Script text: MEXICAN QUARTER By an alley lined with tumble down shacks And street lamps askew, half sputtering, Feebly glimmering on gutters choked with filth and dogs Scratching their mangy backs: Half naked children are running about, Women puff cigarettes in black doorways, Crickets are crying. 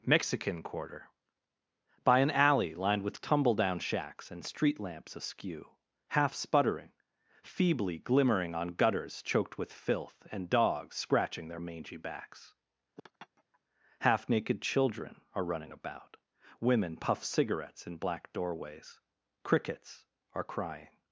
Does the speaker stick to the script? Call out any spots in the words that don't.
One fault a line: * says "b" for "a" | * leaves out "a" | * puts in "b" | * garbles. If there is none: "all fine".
all fine